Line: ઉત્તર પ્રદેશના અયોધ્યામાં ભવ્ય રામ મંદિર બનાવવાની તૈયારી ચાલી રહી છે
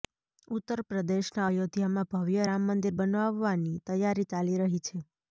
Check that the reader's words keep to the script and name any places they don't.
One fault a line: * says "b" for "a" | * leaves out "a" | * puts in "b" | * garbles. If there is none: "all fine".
all fine